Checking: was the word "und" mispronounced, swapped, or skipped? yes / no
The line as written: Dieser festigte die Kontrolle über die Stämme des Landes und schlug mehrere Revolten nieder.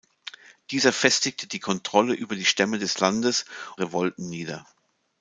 yes